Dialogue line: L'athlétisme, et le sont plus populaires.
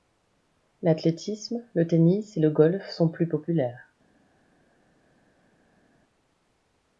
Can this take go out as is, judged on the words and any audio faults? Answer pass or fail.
fail